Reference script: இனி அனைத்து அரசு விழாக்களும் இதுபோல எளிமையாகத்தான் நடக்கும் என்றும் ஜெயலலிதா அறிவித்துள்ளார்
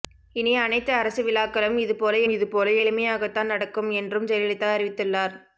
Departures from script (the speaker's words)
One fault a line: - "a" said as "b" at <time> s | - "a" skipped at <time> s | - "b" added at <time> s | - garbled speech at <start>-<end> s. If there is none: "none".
- "இதுபோல" added at 2.3 s